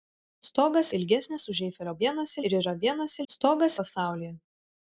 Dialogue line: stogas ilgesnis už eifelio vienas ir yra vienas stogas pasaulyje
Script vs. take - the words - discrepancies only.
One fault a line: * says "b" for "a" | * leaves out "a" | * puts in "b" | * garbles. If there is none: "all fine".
all fine